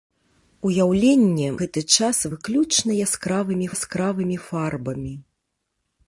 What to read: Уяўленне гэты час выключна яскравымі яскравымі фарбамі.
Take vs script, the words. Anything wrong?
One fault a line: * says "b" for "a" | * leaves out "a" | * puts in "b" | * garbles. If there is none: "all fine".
all fine